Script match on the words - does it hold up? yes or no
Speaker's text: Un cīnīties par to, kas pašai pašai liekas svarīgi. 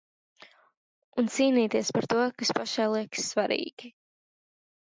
no